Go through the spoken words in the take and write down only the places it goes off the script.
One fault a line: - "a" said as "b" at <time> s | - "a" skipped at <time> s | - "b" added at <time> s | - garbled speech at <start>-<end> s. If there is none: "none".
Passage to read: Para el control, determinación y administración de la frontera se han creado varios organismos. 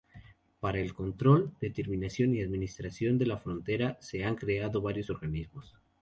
none